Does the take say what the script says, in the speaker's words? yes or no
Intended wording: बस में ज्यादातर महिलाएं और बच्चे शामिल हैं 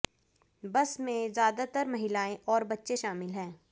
yes